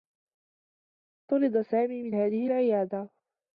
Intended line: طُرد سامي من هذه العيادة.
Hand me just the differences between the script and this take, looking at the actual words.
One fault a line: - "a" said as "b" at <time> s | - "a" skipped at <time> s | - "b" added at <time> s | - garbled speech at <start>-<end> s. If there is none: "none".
none